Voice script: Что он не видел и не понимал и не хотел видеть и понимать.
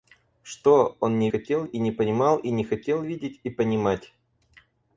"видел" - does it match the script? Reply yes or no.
no